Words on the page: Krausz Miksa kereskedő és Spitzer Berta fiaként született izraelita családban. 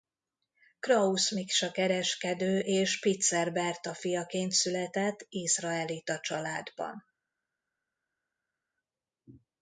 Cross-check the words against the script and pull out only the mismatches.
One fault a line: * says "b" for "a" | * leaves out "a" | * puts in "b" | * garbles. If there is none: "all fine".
all fine